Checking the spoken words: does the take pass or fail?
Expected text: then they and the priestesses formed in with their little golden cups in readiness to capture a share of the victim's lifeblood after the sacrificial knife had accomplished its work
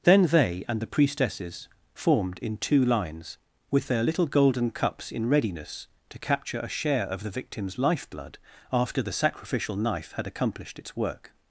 fail